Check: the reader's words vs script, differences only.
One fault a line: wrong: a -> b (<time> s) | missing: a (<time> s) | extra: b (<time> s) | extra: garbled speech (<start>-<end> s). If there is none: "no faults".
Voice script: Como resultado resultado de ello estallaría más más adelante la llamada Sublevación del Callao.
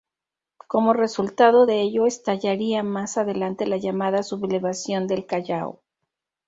missing: resultado (1.7 s)
missing: más (3.2 s)